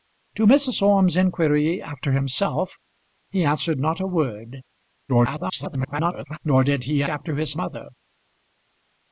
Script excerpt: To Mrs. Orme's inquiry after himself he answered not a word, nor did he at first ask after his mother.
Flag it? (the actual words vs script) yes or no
yes